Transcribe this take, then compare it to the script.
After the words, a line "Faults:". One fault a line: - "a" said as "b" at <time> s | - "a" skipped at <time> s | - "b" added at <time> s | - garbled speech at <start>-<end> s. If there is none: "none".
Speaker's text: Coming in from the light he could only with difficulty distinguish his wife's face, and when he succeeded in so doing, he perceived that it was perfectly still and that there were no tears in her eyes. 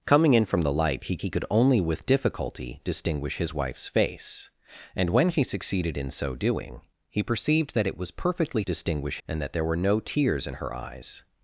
Coming in from the light he he could only with difficulty distinguish his wife's face, and when he succeeded in so doing, he perceived that it was perfectly distinguish and that there were no tears in her eyes.
Faults:
- "he" added at 1.2 s
- "still" said as "distinguish" at 8.6 s